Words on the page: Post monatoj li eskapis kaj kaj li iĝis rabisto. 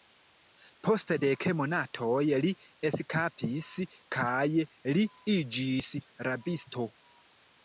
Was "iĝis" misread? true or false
false